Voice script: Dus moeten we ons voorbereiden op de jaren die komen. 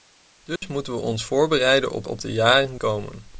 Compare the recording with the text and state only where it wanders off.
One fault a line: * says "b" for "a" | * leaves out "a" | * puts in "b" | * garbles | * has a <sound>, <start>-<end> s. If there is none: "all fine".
* has a dropout, 0.6-0.6 s
* puts in "op"
* leaves out "die"